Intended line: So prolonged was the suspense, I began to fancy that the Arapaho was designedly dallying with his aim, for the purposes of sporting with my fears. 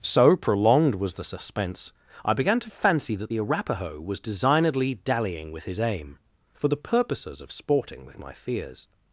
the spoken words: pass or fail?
pass